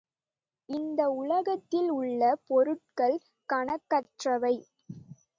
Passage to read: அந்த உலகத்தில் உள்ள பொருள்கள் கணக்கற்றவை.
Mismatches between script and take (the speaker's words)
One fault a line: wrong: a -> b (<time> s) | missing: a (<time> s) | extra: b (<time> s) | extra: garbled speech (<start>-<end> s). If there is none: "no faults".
wrong: அந்த -> இந்த (0.7 s)